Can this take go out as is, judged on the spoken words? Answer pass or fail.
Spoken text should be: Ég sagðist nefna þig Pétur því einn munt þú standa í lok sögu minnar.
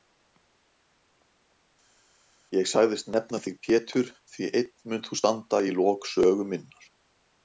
pass